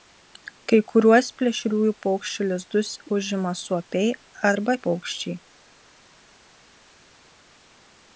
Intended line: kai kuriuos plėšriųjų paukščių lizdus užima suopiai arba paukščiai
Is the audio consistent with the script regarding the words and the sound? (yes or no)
yes